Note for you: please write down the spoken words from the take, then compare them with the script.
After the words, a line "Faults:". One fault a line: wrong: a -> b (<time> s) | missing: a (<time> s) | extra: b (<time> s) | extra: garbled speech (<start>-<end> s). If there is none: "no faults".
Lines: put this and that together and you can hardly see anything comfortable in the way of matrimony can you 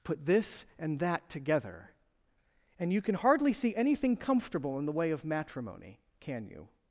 put this and that together and you can hardly see anything comfortable in the way of matrimony can you
Faults:
no faults